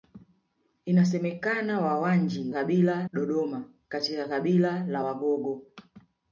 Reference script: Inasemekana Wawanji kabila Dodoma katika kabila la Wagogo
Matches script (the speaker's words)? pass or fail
pass